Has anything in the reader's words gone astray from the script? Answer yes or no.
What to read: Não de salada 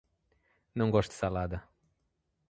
yes